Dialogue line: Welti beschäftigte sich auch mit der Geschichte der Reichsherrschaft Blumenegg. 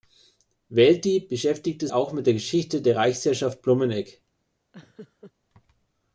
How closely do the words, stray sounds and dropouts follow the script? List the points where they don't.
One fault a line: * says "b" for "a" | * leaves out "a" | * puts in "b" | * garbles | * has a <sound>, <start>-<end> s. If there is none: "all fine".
* leaves out "sich"
* has a laugh, 4.7-5.3 s